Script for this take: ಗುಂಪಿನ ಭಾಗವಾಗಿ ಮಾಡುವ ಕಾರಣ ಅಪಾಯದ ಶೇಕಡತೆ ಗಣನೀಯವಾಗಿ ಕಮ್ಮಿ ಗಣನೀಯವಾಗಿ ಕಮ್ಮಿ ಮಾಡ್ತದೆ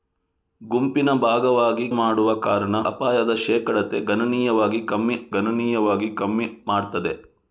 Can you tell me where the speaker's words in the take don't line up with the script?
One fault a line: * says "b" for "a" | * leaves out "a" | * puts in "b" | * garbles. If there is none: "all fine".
all fine